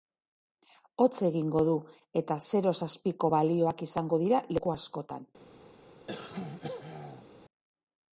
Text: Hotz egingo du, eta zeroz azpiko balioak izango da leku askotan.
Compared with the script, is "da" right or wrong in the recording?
wrong